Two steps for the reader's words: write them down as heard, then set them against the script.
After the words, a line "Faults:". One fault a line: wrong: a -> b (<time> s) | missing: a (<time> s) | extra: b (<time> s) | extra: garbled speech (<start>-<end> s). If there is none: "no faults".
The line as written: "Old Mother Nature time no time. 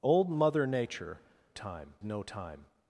"Old Mother Nature time no time.
Faults:
no faults